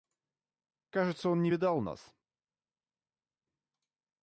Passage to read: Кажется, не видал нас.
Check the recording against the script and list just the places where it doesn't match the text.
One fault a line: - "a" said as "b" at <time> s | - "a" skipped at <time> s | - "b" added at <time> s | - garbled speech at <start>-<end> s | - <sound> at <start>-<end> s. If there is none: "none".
- "он" added at 1.3 s